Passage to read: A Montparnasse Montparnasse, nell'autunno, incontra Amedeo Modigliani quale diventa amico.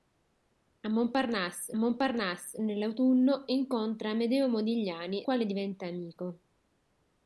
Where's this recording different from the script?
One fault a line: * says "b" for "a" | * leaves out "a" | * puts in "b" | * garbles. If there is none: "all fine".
all fine